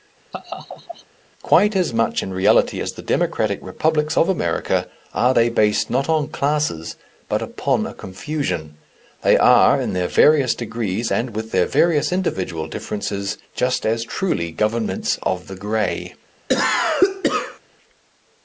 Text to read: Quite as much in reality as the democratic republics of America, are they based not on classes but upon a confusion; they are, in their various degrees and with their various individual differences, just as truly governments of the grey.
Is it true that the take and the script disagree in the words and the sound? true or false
true